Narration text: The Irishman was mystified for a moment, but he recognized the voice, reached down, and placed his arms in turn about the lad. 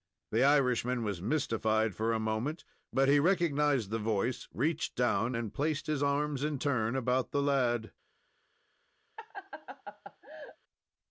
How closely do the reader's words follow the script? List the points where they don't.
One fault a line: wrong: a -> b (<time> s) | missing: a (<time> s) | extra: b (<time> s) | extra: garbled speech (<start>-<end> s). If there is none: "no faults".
no faults